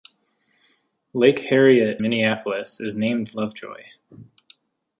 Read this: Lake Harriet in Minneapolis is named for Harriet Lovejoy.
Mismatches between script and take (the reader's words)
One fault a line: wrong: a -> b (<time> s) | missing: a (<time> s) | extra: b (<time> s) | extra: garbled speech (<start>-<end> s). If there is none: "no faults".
missing: in (2.0 s)
missing: for Harriet (3.3 s)